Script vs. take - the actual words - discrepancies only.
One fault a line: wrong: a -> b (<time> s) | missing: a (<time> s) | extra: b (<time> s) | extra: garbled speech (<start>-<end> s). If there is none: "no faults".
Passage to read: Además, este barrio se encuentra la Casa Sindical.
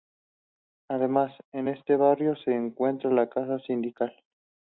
extra: en (1.5 s)